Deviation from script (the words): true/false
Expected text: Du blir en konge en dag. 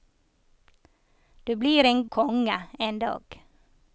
false